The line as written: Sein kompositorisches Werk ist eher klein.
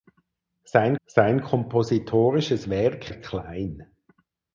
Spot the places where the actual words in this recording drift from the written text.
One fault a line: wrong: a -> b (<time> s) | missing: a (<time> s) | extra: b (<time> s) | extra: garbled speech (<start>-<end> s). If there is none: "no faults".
extra: sein (1.0 s)
missing: ist eher (3.1 s)